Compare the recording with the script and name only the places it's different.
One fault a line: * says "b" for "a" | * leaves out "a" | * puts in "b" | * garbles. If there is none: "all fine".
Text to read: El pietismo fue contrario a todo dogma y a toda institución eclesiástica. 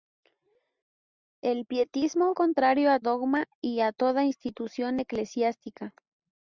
* leaves out "fue"
* leaves out "todo"